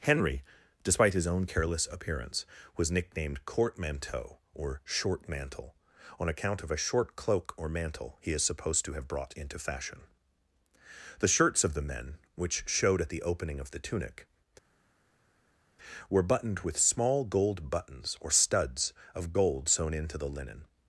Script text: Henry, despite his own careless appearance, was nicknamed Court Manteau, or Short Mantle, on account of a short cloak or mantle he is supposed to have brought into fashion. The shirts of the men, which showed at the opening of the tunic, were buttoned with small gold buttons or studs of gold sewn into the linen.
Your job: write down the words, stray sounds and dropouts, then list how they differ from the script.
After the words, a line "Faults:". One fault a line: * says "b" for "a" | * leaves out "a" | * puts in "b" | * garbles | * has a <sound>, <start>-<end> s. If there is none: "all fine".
Henry, despite his own careless appearance, was nicknamed Court Manteau, or Short Mantle, on account of a short cloak or mantle he is supposed to have brought into fashion. The shirts of the men, which showed at the opening of the tunic, were buttoned with small gold buttons or studs of gold sewn into the linen.
Faults:
all fine